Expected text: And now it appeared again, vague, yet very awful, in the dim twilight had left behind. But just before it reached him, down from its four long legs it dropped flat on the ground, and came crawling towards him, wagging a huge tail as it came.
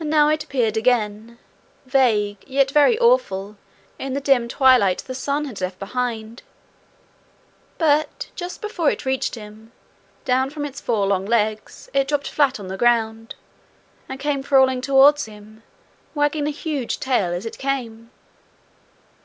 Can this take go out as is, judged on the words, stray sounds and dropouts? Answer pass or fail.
fail